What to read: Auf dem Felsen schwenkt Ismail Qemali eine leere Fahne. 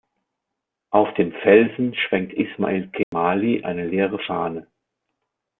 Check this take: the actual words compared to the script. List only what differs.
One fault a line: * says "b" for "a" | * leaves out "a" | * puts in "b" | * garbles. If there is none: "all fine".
all fine